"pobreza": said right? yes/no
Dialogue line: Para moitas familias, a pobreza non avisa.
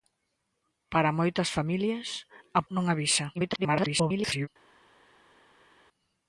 no